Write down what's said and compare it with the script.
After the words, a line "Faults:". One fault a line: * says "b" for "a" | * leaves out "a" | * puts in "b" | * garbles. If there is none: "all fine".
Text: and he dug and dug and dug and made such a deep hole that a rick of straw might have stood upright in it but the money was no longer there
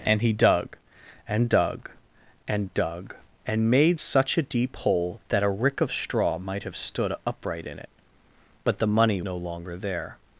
and he dug and dug and dug and made such a deep hole that a rick of straw might have stood upright in it but the money no longer there
Faults:
* leaves out "was"